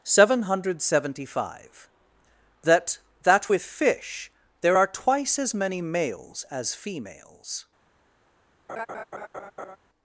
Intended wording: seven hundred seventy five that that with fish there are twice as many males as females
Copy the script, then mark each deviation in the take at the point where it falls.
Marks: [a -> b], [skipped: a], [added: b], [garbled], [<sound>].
seven hundred seventy five that that with fish there are twice as many males as females [laugh]